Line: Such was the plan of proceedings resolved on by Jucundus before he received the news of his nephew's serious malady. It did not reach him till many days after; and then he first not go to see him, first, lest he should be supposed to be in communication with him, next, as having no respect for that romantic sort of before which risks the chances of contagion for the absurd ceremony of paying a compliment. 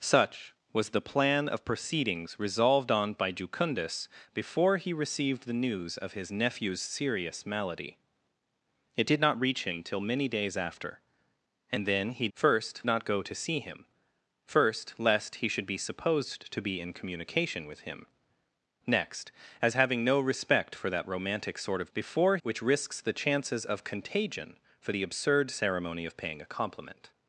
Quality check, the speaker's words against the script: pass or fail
pass